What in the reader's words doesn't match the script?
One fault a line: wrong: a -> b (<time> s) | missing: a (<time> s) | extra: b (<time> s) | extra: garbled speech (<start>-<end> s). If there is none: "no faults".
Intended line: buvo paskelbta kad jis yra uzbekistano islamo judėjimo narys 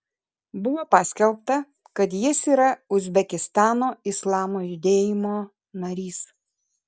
no faults